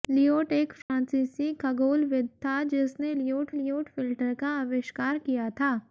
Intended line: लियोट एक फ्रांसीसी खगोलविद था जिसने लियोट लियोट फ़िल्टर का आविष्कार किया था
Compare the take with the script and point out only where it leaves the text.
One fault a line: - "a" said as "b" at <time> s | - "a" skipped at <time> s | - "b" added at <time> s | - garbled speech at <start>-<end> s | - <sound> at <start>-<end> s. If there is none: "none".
- dropout at 0.8-0.9 s